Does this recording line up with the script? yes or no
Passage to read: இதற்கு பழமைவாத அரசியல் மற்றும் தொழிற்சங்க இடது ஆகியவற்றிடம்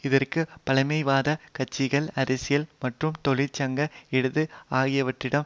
no